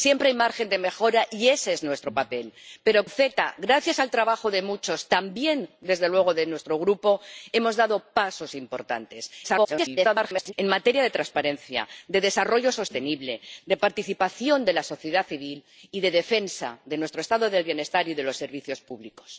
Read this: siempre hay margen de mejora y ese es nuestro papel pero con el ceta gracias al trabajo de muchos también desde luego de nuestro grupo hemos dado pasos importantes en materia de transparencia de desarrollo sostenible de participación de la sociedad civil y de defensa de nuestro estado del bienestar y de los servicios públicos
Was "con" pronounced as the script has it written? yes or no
no